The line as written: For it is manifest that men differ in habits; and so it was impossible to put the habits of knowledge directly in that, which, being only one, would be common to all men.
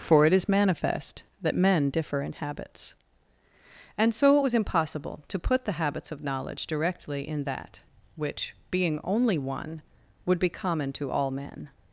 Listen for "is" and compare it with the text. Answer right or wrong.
right